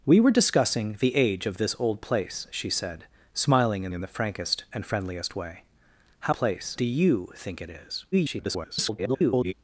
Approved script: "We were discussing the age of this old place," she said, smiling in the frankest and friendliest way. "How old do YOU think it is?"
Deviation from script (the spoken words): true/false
true